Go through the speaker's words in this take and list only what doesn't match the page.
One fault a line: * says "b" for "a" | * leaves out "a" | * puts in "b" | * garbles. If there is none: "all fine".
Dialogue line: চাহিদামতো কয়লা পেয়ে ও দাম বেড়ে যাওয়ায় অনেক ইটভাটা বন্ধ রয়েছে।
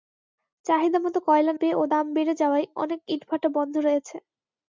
all fine